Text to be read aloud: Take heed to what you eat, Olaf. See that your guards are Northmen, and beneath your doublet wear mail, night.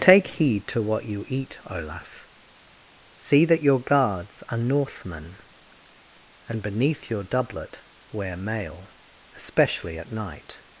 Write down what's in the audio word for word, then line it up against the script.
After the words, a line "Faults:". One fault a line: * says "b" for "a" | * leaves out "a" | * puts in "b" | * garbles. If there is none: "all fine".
Take heed to what you eat, Olaf. See that your guards are Northmen, and beneath your doublet wear mail, especially at night.
Faults:
* puts in "especially at"